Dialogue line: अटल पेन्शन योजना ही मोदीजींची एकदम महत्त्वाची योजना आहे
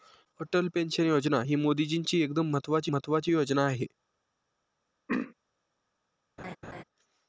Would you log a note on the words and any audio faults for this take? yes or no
yes